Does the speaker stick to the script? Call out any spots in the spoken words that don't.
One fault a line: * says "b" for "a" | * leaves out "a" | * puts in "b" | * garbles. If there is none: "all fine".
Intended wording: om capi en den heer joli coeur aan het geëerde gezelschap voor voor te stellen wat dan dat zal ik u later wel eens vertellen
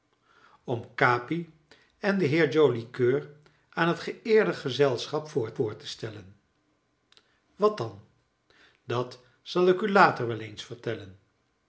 all fine